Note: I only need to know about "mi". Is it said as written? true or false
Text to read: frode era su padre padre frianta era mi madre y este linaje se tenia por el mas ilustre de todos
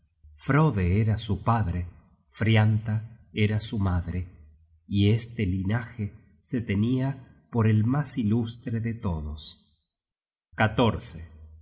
false